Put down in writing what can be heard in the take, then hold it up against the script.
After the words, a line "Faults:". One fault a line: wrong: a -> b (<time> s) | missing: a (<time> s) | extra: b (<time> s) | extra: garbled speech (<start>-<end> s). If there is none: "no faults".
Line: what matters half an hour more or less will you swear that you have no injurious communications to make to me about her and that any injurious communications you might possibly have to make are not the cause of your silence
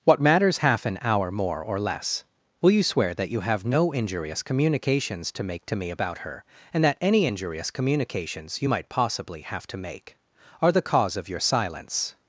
what matters half an hour more or less will you swear that you have no injurious communications to make to me about her and that any injurious communications you might possibly have to make are the cause of your silence
Faults:
missing: not (10.7 s)